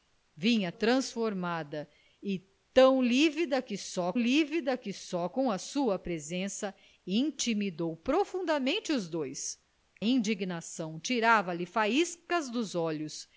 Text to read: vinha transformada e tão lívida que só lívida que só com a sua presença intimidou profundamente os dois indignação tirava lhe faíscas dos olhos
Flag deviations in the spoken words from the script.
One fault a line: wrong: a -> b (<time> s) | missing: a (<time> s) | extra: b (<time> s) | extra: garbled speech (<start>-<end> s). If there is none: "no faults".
no faults